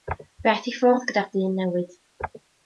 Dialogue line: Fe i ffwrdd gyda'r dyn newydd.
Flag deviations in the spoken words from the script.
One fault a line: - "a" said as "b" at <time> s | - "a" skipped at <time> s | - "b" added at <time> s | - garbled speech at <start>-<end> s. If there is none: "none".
- "aeth" added at 0.5 s